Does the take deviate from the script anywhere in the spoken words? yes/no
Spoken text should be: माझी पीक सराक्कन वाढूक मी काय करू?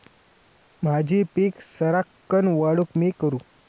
yes